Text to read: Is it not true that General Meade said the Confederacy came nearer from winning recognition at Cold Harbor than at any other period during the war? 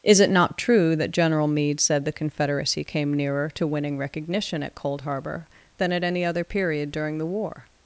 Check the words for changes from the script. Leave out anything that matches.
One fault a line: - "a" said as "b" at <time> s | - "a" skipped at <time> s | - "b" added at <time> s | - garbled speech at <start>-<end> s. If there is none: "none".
- "from" said as "to" at 3.5 s